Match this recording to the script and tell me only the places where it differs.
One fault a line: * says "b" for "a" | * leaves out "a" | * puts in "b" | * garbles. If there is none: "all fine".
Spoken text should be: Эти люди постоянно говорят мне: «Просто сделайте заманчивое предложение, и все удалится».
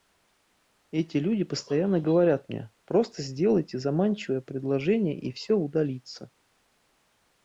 all fine